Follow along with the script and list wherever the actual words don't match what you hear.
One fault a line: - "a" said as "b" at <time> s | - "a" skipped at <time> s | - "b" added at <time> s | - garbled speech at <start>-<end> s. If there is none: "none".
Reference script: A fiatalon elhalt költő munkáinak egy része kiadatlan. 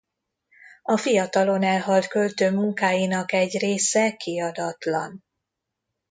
none